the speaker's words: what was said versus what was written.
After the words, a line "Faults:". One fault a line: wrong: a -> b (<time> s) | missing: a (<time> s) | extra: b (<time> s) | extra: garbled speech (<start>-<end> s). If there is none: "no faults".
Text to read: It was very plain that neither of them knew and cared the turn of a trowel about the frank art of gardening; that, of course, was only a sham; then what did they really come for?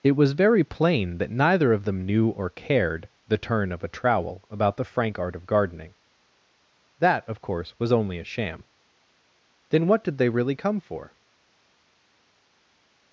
It was very plain that neither of them knew or cared the turn of a trowel about the frank art of gardening; that, of course, was only a sham; then what did they really come for?
Faults:
wrong: and -> or (2.3 s)